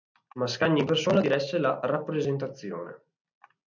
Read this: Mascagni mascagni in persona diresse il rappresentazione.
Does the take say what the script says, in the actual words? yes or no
no